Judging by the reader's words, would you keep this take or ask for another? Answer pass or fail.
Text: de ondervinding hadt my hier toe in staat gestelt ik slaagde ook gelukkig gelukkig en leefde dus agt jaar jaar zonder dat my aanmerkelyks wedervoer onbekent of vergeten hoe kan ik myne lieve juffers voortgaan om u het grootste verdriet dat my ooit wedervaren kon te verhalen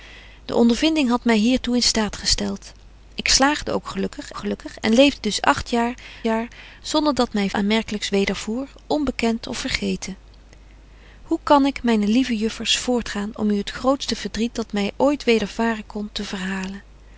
pass